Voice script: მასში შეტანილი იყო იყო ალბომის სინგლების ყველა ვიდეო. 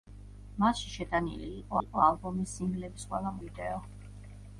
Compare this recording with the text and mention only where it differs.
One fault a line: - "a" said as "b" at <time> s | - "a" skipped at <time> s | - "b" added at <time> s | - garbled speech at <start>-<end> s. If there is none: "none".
none